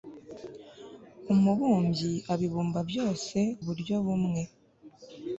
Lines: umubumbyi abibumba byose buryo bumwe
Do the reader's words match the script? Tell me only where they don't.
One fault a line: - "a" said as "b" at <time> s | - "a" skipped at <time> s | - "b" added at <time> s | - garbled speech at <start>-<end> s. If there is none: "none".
none